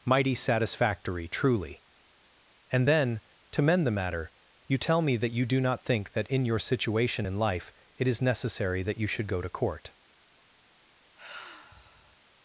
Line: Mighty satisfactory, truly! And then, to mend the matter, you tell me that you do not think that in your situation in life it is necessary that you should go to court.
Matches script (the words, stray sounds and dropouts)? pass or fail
fail